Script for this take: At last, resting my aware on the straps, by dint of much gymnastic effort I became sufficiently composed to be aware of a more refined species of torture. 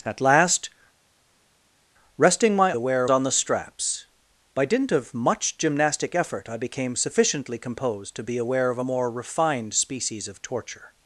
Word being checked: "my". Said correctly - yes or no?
yes